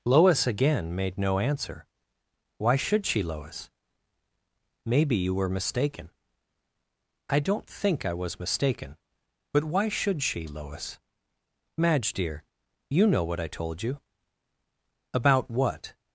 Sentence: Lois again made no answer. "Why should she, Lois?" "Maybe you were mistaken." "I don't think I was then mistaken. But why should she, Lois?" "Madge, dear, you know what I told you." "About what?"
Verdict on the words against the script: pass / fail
fail